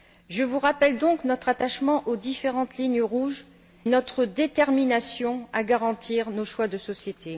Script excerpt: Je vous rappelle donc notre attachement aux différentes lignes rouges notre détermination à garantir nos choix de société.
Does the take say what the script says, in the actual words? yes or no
yes